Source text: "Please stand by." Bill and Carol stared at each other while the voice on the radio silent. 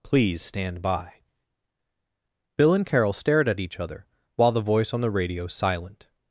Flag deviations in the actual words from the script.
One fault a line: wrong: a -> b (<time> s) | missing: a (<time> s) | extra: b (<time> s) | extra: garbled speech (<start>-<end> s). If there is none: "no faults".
no faults